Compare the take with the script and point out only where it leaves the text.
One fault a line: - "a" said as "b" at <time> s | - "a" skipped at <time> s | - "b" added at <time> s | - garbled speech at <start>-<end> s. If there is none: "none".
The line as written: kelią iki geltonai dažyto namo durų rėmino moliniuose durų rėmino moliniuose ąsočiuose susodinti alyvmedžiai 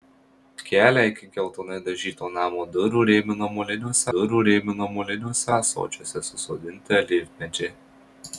none